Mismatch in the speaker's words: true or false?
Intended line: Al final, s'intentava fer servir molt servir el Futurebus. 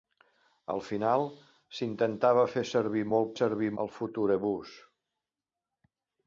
false